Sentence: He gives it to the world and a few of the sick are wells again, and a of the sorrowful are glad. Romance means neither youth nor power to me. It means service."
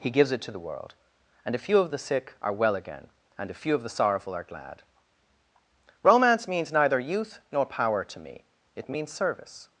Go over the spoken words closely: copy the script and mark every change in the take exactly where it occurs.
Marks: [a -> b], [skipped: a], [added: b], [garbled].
He gives it to the world and a few of the sick are [wells -> well] again, and a [added: few] of the sorrowful are glad. Romance means neither youth nor power to me. It means service."